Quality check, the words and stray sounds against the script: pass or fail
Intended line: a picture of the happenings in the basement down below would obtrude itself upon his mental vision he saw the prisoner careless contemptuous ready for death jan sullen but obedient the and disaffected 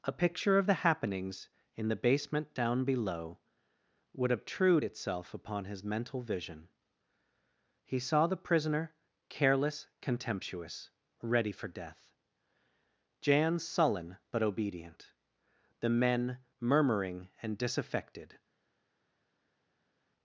fail